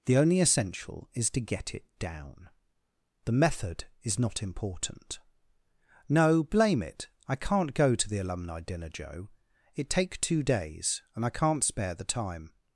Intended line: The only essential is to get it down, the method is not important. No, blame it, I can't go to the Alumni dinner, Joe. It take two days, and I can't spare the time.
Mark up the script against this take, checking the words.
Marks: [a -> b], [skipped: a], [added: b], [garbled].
The only essential is to get it down, the method is not important. No, blame it, I can't go to the Alumni dinner, Joe. It take two days, and I can't spare the time.